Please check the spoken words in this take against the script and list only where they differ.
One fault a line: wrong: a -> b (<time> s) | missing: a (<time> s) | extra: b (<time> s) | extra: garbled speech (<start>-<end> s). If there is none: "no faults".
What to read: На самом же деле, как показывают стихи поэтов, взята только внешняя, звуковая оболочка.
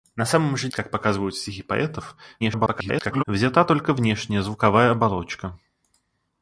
missing: деле (0.7 s)
extra: garbled speech (2.4-3.2 s)